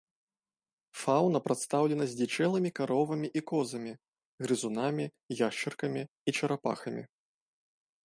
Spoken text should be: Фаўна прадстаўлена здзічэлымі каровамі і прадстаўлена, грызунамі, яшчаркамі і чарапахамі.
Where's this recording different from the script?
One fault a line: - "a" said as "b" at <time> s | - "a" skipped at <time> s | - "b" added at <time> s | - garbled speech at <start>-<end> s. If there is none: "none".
- "прадстаўлена" said as "козамі" at 3.5 s